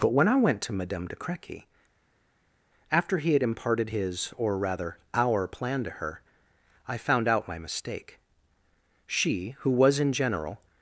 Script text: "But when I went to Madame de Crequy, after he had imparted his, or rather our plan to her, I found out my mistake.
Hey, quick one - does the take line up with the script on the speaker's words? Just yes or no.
no